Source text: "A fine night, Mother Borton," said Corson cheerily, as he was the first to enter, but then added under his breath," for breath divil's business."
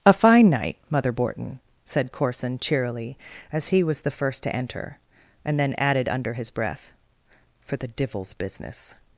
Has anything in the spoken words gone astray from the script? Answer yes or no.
yes